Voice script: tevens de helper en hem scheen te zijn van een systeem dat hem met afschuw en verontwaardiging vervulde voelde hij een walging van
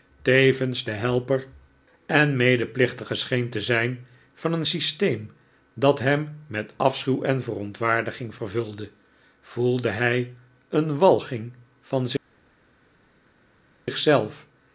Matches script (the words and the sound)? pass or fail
fail